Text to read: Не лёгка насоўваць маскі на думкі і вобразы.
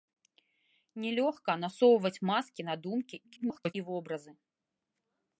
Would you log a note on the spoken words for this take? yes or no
yes